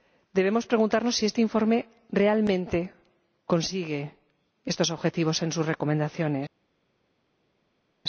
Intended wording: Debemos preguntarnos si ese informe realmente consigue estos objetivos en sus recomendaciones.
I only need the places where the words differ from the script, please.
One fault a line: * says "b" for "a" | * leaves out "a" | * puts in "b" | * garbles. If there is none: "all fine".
* says "este" for "ese"